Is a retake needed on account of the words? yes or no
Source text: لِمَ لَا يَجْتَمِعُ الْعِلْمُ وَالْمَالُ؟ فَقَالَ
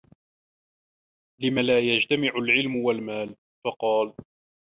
no